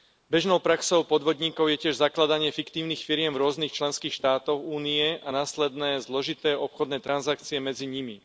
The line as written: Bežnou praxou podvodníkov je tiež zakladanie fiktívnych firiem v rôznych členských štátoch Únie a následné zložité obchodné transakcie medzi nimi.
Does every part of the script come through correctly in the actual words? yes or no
yes